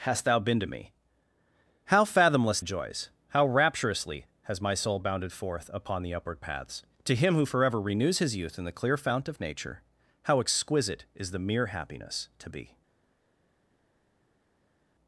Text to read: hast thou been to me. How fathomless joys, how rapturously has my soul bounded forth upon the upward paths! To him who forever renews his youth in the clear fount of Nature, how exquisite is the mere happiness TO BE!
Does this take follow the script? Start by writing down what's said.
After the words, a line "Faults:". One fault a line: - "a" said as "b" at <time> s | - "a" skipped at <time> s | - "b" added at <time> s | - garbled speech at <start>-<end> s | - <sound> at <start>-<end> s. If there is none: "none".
hast thou been to me. How fathomless joys, how rapturously has my soul bounded forth upon the upward paths! To him who forever renews his youth in the clear fount of Nature, how exquisite is the mere happiness TO BE!
Faults:
none